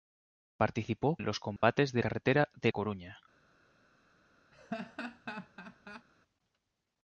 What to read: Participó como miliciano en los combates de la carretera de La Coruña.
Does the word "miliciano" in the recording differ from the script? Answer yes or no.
yes